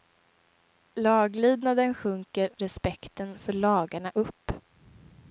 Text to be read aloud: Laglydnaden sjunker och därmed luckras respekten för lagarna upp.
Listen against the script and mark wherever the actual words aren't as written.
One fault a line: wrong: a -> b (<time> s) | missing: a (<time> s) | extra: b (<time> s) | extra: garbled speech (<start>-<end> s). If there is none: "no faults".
missing: och därmed luckras (2.6 s)